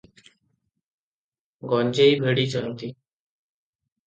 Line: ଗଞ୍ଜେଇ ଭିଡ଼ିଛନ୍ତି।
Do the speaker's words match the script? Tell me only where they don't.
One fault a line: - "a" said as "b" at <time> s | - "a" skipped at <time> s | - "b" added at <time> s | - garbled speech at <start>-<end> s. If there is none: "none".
none